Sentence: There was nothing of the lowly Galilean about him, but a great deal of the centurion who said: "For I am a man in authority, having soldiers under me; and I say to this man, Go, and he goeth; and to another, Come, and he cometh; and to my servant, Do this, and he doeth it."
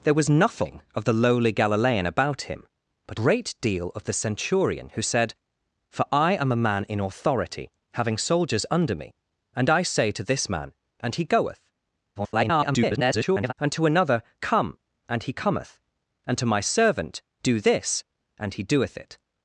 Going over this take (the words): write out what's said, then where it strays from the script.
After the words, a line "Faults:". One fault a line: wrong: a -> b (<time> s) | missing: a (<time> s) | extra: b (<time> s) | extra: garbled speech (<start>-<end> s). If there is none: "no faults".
There was nothing of the lowly Galilean about him, but great deal of the centurion who said: "For I am a man in authority, having soldiers under me; and I say to this man, And he goeth; [garbled] and to another, Come, and he cometh; and to my servant, Do this, and he doeth it."
Faults:
missing: a (3.2 s)
missing: Go (10.7 s)
extra: garbled speech (12.2-13.5 s)